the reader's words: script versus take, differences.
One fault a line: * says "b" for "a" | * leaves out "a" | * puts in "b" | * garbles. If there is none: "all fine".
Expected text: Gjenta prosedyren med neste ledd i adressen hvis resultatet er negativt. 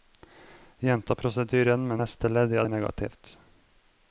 * leaves out "adressen hvis resultatet"